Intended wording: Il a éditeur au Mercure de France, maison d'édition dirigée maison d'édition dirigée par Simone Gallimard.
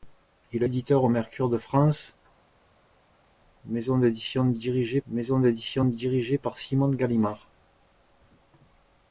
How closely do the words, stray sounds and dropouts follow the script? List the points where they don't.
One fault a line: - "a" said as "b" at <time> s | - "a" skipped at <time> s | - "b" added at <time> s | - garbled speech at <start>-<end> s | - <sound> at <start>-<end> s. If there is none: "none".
none